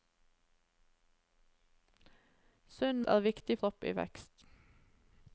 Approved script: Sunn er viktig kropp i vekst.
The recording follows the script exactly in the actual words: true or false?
true